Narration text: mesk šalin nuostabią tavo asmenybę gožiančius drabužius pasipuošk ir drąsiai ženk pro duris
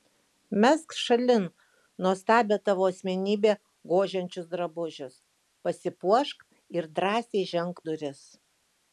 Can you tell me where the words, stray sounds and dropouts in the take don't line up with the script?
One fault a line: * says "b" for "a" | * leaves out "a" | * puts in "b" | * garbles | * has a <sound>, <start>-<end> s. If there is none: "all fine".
* leaves out "pro"